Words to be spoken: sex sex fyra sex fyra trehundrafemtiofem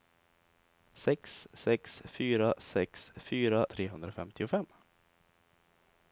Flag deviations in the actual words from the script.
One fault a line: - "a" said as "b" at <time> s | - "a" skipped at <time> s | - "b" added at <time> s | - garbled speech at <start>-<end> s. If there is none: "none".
none